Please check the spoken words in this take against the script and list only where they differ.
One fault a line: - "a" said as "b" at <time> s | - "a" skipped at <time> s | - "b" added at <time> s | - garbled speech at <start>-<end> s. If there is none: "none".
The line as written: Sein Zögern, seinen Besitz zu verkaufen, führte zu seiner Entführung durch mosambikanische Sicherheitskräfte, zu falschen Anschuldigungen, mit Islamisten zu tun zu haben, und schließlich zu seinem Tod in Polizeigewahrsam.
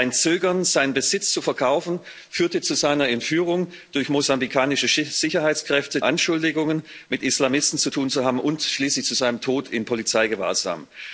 - "zu falschen" skipped at 6.0 s